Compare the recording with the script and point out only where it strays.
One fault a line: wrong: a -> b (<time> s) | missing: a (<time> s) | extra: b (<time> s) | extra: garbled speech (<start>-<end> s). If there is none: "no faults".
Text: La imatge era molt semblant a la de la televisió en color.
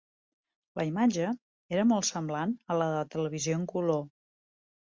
no faults